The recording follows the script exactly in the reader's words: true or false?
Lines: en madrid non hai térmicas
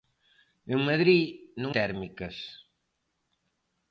false